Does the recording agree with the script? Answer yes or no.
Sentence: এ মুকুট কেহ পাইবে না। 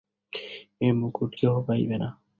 yes